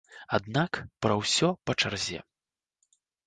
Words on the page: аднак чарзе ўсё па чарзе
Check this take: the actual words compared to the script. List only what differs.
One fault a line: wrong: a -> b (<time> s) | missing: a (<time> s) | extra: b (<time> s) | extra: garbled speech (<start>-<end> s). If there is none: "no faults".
wrong: чарзе -> пра (1.1 s)